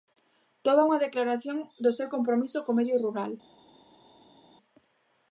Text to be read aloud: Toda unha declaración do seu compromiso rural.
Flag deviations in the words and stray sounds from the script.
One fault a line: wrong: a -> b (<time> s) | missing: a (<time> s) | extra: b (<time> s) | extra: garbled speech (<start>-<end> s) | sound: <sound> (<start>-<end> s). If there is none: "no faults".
extra: co medio (2.6 s)